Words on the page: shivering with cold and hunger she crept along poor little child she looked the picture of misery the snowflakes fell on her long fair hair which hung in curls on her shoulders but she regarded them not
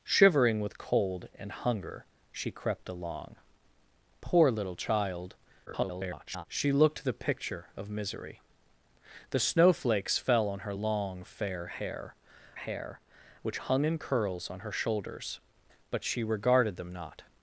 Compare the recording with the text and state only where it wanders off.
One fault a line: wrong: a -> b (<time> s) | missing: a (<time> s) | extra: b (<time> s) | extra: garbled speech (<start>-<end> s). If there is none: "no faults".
extra: garbled speech (5.7-6.5 s)
extra: hair (12.5 s)